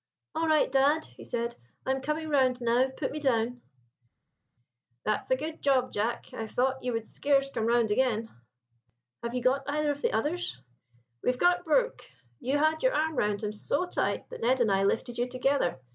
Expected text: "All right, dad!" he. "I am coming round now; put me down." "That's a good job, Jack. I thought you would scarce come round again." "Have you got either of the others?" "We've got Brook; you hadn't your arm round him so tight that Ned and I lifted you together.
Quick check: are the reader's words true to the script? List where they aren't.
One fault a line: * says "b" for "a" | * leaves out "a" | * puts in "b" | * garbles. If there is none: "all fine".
* puts in "said"
* says "had" for "hadn't"